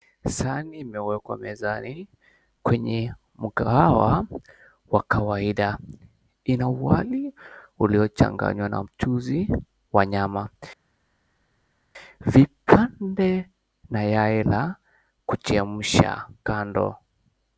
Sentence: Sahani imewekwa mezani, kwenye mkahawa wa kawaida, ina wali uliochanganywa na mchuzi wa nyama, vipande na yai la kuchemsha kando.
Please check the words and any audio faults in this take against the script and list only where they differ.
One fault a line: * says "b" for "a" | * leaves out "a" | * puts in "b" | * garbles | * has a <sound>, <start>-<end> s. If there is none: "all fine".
all fine